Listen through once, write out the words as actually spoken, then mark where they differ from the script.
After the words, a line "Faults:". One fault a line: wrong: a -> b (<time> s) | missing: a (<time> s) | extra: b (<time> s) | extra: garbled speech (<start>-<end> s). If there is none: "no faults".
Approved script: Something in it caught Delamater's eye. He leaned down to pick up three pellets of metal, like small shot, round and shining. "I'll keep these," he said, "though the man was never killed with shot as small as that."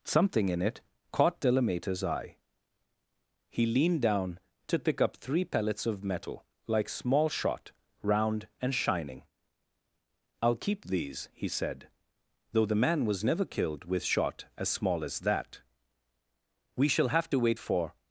Something in it caught Delamater's eye. He leaned down to pick up three pellets of metal, like small shot, round and shining. "I'll keep these," he said, "though the man was never killed with shot as small as that." "We shall have to wait for
Faults:
extra: We shall have to wait for (16.8 s)